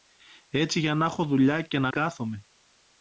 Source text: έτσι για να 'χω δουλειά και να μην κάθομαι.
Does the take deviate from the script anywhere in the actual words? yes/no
yes